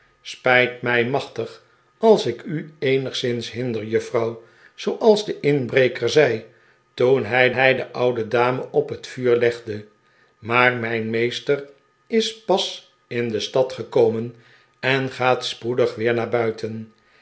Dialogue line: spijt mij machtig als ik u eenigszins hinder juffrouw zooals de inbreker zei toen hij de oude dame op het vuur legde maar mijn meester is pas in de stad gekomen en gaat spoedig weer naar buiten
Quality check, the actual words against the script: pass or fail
fail